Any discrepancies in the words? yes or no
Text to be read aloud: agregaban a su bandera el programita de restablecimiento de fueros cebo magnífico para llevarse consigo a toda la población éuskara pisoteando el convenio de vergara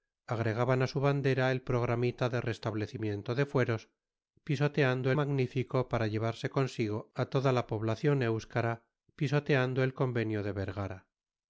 yes